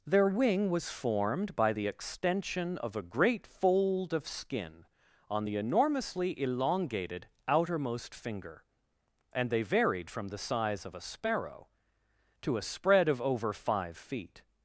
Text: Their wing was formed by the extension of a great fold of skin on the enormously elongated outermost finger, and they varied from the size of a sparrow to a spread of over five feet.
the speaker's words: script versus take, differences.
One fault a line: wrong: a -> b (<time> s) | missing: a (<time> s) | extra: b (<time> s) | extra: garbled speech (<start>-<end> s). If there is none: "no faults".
no faults